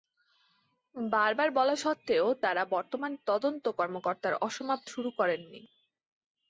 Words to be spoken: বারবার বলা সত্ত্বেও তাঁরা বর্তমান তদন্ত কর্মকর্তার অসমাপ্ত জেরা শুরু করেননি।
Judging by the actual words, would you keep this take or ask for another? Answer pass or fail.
fail